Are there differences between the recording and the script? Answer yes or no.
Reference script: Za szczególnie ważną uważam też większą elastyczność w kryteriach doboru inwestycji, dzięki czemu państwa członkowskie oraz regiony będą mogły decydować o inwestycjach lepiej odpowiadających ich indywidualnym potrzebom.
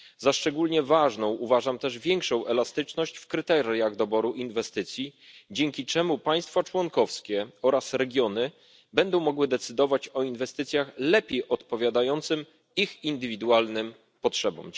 no